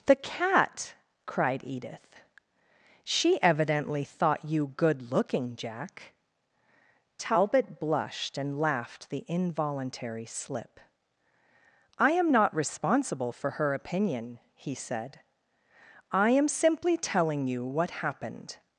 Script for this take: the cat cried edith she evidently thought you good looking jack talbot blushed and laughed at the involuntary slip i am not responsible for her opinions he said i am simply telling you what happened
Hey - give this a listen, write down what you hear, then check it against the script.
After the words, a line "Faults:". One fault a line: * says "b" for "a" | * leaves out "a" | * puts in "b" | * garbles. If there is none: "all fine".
the cat cried edith she evidently thought you good looking jack talbot blushed and laughed the involuntary slip i am not responsible for her opinion he said i am simply telling you what happened
Faults:
* leaves out "at"
* says "opinion" for "opinions"